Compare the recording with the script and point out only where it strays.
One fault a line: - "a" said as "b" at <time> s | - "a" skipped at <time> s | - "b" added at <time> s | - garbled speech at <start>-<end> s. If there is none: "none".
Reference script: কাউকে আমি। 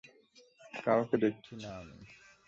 - "দেখছি না" added at 1.1 s